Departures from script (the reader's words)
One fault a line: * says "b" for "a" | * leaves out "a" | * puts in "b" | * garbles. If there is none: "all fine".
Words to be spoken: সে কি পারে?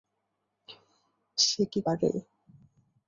all fine